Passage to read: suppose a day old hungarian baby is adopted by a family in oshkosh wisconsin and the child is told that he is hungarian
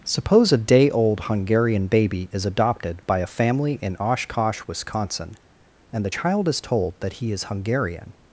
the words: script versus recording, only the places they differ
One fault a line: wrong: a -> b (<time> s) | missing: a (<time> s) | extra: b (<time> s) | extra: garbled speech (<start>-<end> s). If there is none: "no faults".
no faults